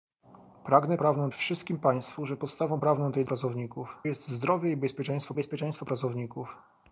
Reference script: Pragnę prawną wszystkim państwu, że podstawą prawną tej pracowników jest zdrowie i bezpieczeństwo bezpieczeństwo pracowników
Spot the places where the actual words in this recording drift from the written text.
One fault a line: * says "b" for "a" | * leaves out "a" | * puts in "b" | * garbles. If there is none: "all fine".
all fine